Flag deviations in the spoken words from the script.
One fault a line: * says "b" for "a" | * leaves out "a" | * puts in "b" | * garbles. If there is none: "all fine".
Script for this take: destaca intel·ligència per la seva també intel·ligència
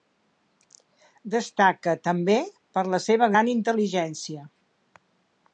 * says "també" for "intel·ligència"
* says "gran" for "també"